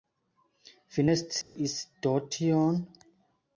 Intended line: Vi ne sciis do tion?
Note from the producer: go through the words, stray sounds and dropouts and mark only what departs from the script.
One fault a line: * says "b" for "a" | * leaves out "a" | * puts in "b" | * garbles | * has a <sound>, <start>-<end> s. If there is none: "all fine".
* has a dropout, 1.4-1.6 s